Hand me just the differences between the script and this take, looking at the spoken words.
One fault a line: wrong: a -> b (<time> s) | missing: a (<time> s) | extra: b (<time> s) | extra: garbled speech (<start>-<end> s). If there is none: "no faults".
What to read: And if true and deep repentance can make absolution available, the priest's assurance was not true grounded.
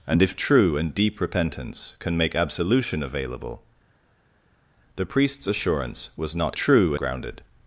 no faults